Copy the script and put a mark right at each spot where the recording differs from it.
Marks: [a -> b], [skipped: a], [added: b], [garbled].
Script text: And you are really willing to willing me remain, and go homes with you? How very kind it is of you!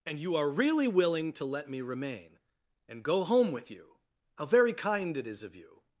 And you are really willing to [willing -> let] me remain, and go [homes -> home] with you? How very kind it is of you!